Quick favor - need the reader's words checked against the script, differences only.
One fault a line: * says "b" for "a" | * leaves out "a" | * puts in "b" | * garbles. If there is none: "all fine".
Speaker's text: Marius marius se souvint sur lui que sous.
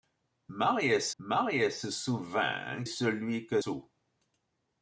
all fine